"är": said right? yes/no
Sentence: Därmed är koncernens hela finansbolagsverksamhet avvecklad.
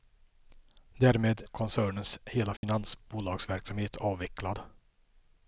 no